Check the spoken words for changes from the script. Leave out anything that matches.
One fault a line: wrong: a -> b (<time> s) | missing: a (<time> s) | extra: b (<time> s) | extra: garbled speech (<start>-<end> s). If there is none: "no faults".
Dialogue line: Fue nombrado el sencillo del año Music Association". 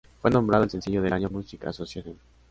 no faults